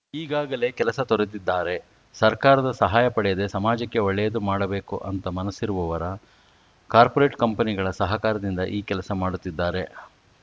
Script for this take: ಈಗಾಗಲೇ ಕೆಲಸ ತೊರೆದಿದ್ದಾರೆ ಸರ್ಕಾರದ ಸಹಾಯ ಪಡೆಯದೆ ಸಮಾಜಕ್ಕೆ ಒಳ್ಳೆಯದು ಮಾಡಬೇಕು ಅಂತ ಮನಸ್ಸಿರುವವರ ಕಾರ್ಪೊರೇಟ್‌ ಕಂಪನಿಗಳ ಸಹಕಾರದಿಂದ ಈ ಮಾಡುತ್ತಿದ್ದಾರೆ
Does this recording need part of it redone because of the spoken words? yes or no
yes